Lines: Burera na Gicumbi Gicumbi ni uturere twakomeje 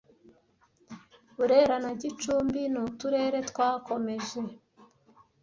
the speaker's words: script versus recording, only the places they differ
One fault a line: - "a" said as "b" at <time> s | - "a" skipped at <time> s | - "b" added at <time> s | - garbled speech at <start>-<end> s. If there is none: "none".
- "Gicumbi" skipped at 2.6 s